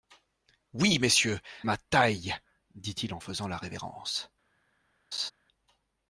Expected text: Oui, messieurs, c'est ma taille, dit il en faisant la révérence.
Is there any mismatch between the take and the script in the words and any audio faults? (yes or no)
yes